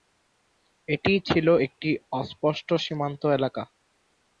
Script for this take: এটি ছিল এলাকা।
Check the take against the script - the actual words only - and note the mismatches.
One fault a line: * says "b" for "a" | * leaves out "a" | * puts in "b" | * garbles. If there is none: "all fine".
* puts in "একটি অস্পষ্ট সীমান্ত"